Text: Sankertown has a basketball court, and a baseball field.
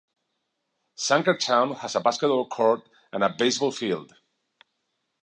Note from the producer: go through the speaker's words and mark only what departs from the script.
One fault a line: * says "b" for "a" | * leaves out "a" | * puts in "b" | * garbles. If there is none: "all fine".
all fine